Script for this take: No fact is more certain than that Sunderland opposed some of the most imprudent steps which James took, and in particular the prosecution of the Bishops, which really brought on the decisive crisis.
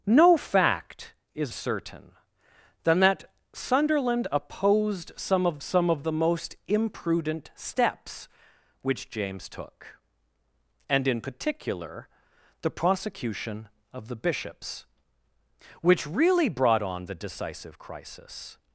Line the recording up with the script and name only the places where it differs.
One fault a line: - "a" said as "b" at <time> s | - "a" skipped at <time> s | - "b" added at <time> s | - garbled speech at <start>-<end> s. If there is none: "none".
- "more" skipped at 1.5 s
- "some of" added at 5.6 s